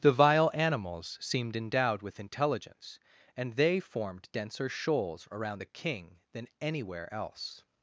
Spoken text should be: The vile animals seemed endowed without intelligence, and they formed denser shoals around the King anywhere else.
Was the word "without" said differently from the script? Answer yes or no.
yes